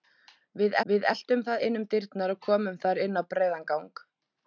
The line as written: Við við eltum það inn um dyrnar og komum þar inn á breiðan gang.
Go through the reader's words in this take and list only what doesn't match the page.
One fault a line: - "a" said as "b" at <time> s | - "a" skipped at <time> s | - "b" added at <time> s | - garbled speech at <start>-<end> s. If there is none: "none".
none